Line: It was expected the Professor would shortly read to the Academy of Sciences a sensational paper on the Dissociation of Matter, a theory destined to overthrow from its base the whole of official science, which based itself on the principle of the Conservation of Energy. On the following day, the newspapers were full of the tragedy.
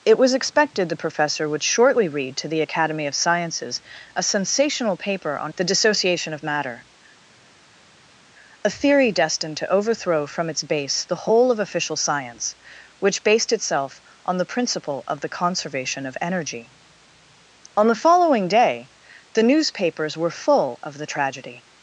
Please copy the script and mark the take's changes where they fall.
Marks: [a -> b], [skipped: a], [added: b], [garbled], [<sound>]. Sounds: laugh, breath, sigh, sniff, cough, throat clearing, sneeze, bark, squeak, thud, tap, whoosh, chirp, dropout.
It was expected the Professor would shortly read to the Academy of Sciences a sensational paper on the Dissociation of Matter, a theory destined to overthrow from its base the whole of official science, which based itself on the principle of the Conservation of Energy. On the following day, the newspapers were full of the tragedy.